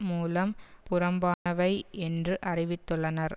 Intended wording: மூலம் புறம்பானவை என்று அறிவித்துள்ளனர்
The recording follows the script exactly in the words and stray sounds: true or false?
false